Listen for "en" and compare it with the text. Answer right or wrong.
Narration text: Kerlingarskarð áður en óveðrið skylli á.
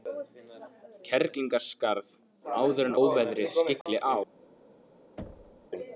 right